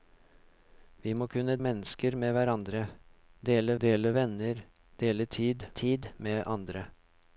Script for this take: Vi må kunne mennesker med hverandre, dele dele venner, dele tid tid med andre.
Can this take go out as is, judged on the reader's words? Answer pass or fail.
pass